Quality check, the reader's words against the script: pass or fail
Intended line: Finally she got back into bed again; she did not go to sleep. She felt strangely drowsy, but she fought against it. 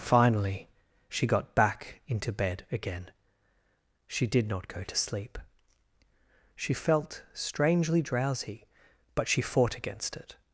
pass